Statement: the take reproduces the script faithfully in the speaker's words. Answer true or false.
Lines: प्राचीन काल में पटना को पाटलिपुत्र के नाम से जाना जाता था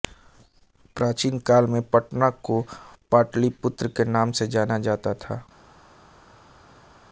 true